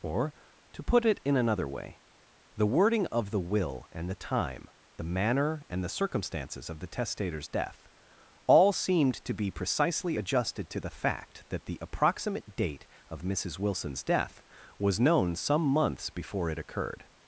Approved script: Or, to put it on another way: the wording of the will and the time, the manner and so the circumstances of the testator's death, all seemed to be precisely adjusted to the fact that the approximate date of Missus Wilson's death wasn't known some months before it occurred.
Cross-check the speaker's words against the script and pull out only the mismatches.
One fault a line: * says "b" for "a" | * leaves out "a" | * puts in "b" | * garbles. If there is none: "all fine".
* says "in" for "on"
* leaves out "so"
* says "was" for "wasn't"